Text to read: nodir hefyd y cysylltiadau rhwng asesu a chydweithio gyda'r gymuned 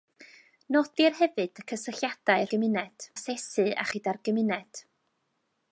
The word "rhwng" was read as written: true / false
false